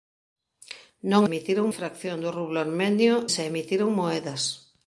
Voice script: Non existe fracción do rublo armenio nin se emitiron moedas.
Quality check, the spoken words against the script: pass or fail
fail